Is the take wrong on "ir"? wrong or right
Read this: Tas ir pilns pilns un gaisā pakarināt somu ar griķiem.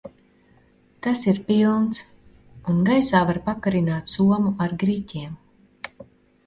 right